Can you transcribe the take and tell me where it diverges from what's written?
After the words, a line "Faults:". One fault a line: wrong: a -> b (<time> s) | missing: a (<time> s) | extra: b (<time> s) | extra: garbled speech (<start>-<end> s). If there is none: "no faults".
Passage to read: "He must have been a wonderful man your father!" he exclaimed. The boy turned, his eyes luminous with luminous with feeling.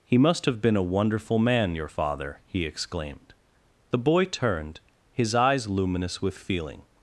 "He must have been a wonderful man your father!" he exclaimed. The boy turned, his eyes luminous with feeling.
Faults:
missing: luminous with (6.4 s)